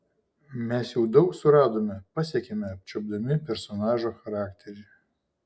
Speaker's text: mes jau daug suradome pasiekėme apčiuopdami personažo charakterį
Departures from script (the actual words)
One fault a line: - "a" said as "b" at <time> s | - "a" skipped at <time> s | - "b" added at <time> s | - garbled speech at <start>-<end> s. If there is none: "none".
none